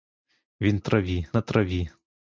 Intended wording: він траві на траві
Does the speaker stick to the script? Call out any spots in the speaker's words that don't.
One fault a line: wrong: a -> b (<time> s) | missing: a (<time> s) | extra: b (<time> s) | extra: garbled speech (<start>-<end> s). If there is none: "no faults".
no faults